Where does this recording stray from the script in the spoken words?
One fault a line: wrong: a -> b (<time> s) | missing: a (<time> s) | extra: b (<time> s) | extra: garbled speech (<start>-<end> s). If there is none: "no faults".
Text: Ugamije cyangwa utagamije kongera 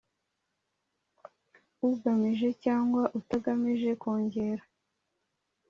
no faults